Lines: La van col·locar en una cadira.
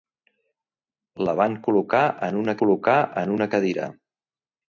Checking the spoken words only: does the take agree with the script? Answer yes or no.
no